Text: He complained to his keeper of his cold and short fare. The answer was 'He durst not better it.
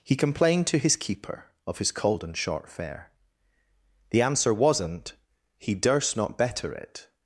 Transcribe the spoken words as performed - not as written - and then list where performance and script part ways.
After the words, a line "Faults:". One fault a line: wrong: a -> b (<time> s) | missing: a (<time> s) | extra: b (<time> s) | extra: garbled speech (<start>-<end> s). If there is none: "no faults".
He complained to his keeper of his cold and short fare. The answer wasn't 'He durst not better it.
Faults:
wrong: was -> wasn't (4.5 s)